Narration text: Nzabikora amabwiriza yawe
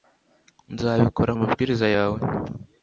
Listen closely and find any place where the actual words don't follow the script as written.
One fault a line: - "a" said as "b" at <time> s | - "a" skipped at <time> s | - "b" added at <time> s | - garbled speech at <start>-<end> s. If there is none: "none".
none